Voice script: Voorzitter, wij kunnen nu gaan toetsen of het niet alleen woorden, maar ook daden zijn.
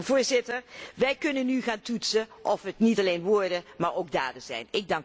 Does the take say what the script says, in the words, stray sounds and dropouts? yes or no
yes